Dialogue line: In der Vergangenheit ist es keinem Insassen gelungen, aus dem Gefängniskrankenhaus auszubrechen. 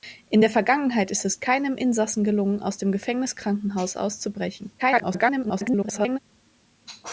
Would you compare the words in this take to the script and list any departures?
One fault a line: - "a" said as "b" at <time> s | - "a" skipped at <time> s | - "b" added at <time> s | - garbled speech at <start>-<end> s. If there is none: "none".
- garbled speech at 4.8-6.2 s